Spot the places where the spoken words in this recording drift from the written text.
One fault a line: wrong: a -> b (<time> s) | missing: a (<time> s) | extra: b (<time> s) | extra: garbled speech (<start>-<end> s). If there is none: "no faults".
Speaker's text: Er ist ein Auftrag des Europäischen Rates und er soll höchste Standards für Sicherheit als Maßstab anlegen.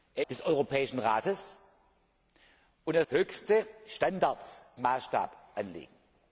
missing: ist ein Auftrag (0.2 s)
missing: soll (3.1 s)
missing: für Sicherheit als (4.6 s)